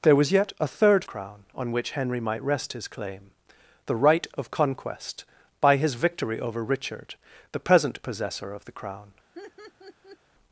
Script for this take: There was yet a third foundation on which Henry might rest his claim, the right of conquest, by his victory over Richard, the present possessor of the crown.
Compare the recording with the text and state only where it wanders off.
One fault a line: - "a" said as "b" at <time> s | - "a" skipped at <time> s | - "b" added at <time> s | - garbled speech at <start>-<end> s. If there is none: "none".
- "foundation" said as "crown" at 1.0 s